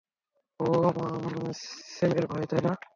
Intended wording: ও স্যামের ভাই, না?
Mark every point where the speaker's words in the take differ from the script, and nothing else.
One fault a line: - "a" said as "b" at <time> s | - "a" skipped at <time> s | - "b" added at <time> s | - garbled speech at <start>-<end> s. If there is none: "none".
- "তাই" added at 2.5 s